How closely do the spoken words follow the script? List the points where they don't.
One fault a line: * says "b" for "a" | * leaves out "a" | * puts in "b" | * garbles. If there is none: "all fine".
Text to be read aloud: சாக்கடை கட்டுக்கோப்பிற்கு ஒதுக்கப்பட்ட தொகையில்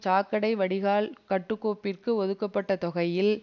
* puts in "வடிகால்"